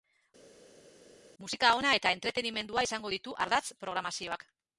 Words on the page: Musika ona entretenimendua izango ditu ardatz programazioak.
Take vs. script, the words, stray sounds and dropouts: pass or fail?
fail